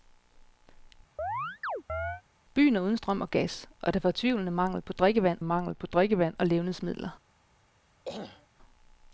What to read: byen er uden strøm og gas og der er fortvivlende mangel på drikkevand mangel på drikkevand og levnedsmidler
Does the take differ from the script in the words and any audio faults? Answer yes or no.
yes